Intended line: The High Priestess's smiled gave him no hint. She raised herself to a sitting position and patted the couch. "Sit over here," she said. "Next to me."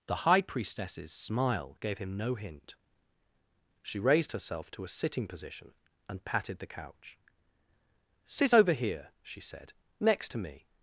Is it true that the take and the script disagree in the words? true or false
true